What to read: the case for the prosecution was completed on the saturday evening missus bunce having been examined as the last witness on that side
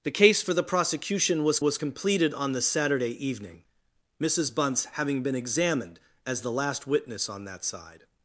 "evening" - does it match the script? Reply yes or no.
yes